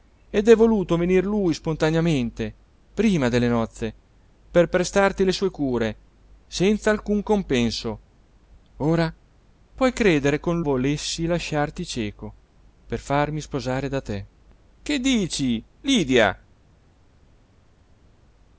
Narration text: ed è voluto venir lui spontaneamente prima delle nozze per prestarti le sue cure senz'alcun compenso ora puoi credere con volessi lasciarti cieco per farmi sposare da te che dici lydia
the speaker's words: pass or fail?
pass